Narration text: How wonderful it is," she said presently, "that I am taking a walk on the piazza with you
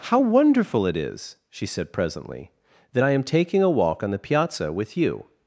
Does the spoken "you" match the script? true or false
true